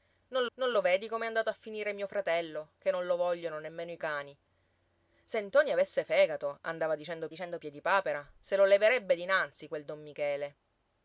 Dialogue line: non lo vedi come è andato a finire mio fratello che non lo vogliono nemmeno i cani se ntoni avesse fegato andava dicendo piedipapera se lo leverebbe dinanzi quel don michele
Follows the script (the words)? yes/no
no